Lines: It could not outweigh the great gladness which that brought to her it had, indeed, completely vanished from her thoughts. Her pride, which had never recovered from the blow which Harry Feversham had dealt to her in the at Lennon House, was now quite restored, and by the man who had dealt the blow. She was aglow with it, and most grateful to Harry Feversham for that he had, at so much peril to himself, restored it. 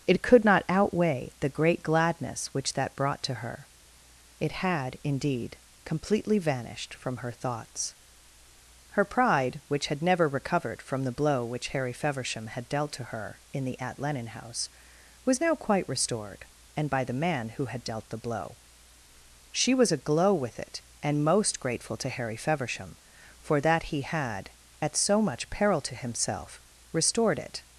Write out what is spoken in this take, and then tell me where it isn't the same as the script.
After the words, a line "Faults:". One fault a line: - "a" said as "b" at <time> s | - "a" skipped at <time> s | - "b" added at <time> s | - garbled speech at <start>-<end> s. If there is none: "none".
It could not outweigh the great gladness which that brought to her it had, indeed, completely vanished from her thoughts. Her pride, which had never recovered from the blow which Harry Feversham had dealt to her in the at Lennon House, was now quite restored, and by the man who had dealt the blow. She was aglow with it, and most grateful to Harry Feversham for that he had, at so much peril to himself, restored it.
Faults:
none